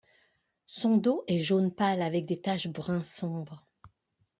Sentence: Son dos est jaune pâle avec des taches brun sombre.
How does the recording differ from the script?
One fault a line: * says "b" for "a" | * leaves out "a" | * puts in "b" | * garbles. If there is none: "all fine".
all fine